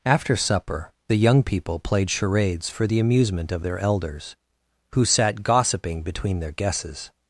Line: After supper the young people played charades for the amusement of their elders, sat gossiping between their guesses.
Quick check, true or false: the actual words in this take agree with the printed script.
false